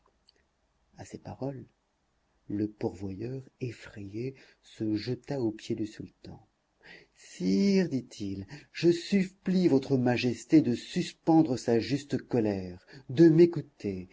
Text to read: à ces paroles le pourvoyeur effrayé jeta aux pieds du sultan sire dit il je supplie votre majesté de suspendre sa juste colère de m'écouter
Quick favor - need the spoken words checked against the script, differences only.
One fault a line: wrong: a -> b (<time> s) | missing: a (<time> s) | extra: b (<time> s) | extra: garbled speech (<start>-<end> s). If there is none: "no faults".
extra: se (4.6 s)